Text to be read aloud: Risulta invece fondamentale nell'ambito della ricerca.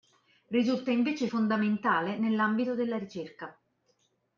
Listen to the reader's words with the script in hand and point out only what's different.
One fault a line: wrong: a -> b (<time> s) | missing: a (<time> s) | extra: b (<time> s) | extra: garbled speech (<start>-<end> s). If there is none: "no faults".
no faults